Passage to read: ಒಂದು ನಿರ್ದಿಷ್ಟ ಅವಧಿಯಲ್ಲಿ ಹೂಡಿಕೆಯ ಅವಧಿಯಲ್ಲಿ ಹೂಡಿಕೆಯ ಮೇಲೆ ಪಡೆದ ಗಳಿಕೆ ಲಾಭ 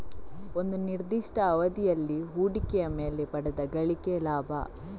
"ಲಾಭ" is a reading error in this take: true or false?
false